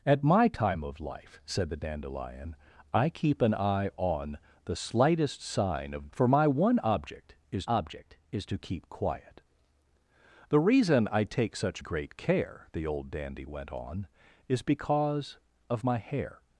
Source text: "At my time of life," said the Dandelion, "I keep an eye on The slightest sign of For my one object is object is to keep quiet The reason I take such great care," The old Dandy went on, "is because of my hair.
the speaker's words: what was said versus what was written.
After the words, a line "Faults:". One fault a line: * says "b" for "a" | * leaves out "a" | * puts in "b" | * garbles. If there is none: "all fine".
"At my time of life," said the Dandelion, "I keep an eye on The slightest sign of For my one object is object is to keep quiet The reason I take such great care," The old Dandy went on, "is because of my hair.
Faults:
all fine